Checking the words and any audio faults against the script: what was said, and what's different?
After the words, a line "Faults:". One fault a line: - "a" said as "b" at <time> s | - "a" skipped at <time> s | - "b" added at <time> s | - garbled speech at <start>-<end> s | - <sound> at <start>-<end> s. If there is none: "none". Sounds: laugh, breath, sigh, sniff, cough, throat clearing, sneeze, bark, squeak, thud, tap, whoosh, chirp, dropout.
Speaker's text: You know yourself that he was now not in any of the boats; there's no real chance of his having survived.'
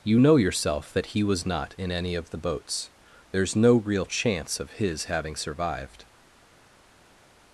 You know yourself that he was not in any of the boats; there's no real chance of his having survived.'
Faults:
- "now" skipped at 1.4 s